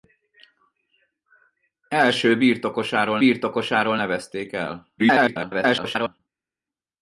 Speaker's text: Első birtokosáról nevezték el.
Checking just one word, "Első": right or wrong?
right